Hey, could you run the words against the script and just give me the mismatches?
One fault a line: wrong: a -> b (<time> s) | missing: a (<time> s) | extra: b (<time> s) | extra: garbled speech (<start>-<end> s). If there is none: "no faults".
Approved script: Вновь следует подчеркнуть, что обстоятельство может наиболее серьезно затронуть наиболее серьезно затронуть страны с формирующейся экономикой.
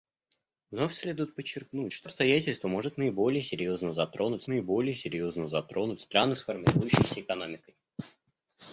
no faults